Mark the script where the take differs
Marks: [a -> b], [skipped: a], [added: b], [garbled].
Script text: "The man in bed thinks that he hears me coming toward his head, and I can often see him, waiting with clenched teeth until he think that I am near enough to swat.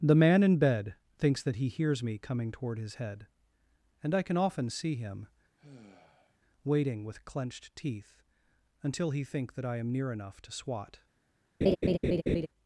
"The man in bed thinks that he hears me coming toward his head, and I can often see him, waiting with clenched teeth until he think that I am near enough to swat.